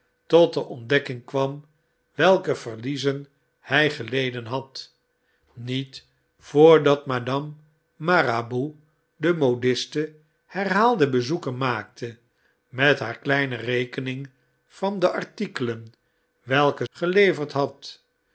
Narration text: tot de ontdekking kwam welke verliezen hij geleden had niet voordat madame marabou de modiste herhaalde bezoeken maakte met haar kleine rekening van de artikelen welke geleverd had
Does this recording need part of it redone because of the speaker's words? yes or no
no